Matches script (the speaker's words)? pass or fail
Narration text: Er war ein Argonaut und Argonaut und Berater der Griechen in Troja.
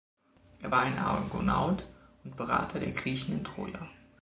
fail